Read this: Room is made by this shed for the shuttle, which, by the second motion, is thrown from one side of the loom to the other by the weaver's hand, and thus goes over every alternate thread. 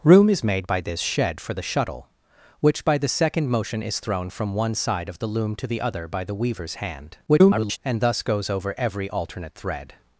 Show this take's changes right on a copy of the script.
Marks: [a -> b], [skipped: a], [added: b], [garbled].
Room is made by this shed for the shuttle, which, by the second motion, is thrown from one side of the loom to the other by the weaver's hand, [garbled] and thus goes over every alternate thread.